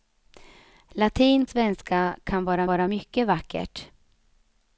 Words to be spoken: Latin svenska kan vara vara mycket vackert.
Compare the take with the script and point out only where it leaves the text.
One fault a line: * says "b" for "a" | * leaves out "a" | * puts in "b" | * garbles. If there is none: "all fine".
all fine